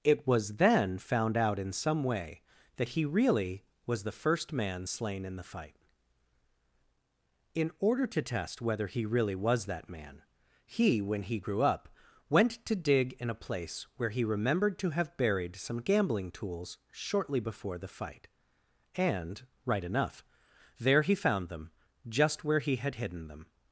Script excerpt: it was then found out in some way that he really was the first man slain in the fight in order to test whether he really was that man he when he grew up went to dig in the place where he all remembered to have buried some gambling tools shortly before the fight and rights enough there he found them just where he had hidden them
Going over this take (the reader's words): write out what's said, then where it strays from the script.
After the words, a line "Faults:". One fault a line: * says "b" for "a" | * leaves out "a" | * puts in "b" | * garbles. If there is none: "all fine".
it was then found out in some way that he really was the first man slain in the fight in order to test whether he really was that man he when he grew up went to dig in a place where he remembered to have buried some gambling tools shortly before the fight and right enough there he found them just where he had hidden them
Faults:
* says "a" for "the"
* leaves out "all"
* says "right" for "rights"